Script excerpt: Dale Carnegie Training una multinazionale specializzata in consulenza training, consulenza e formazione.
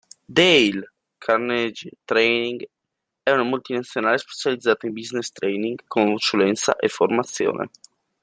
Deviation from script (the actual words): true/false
true